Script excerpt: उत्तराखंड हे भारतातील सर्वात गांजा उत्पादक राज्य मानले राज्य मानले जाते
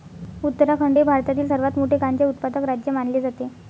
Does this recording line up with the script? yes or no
no